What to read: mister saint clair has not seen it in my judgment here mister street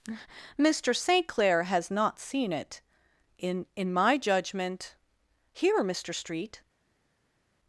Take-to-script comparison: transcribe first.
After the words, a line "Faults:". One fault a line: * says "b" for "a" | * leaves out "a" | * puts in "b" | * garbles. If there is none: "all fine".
mister saint clair has not seen it in in my judgment here mister street
Faults:
* puts in "in"